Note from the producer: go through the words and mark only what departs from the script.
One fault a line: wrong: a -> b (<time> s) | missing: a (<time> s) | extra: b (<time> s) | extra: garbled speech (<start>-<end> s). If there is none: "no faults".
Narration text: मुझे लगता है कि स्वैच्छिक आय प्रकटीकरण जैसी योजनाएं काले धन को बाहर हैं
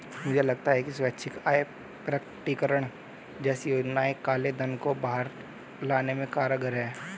extra: लाने में कारगर (5.8 s)